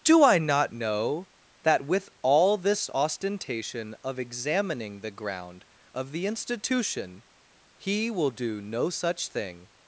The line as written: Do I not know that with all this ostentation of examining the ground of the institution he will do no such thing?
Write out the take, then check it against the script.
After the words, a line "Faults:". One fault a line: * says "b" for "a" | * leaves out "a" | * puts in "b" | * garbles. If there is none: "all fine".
Do I not know that with all this ostentation of examining the ground of the institution he will do no such thing?
Faults:
all fine